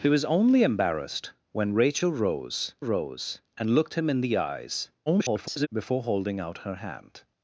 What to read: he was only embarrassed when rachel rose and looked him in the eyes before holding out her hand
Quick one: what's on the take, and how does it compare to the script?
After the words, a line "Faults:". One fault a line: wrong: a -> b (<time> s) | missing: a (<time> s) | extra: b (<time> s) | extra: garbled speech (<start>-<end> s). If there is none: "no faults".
he was only embarrassed when rachel rose rose and looked him in the eyes [garbled] before holding out her hand
Faults:
extra: rose (2.8 s)
extra: garbled speech (5.1-5.7 s)